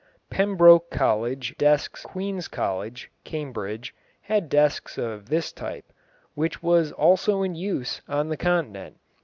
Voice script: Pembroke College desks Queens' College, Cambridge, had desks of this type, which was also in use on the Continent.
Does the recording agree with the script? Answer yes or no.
yes